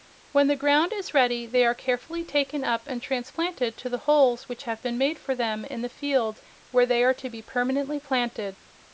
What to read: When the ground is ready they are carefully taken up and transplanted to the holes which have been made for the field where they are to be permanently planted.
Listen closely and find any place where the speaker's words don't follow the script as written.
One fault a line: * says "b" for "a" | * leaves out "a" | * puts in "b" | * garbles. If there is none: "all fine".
* puts in "them in"